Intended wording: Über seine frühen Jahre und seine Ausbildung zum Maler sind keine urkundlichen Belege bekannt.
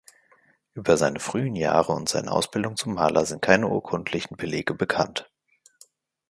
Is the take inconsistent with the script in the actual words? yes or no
no